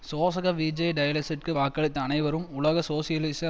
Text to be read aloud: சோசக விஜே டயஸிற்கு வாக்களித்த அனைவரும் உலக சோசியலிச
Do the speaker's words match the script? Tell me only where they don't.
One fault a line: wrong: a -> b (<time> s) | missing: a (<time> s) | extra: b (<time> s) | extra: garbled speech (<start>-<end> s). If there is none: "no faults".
no faults